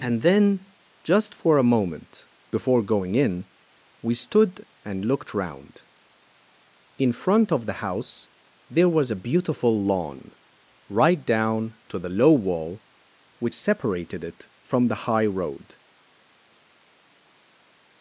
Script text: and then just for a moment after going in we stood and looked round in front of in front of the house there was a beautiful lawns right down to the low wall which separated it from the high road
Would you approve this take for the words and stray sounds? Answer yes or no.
no